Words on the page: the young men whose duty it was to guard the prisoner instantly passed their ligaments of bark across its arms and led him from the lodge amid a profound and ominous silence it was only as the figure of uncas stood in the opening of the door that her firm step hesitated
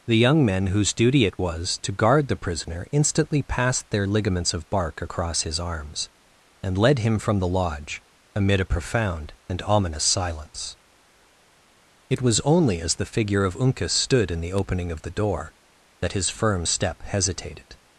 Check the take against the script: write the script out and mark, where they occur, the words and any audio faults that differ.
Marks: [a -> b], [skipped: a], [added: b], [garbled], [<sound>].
the young men whose duty it was to guard the prisoner instantly passed their ligaments of bark across [its -> his] arms and led him from the lodge amid a profound and ominous silence it was only as the figure of uncas stood in the opening of the door that [her -> his] firm step hesitated